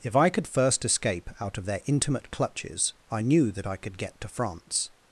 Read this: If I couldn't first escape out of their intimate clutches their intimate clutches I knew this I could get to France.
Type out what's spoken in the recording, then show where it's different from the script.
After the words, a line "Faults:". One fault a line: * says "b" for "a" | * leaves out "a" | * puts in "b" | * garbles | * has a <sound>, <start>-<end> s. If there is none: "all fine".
If I could first escape out of their intimate clutches I knew that I could get to France.
Faults:
* says "could" for "couldn't"
* leaves out "their intimate clutches"
* says "that" for "this"